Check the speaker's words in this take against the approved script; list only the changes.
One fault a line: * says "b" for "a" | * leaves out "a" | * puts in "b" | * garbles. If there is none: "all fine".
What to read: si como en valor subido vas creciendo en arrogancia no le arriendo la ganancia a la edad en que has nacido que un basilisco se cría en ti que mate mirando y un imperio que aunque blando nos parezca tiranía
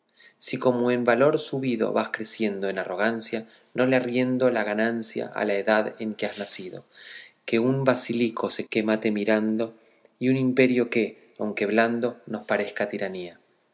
* leaves out "cría en ti"